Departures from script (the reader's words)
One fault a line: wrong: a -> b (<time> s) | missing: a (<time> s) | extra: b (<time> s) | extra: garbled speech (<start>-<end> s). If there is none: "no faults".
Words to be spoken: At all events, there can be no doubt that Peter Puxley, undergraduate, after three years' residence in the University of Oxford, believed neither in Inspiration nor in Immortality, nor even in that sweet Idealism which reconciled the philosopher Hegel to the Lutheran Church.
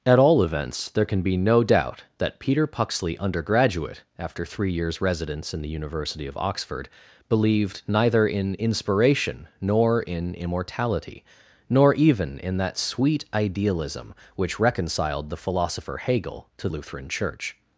missing: the (16.7 s)